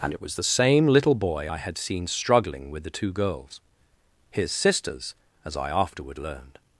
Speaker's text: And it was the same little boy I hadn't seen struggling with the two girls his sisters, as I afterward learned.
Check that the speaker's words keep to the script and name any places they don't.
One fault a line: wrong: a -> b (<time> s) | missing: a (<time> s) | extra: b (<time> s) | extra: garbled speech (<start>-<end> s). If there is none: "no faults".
wrong: hadn't -> had (1.6 s)